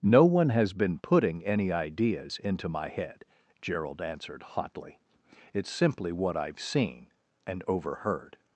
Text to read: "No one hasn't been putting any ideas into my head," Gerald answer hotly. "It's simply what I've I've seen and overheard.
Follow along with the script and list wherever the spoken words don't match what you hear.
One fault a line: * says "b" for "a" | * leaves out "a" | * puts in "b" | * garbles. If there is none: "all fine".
* says "has" for "hasn't"
* says "answered" for "answer"
* leaves out "I've"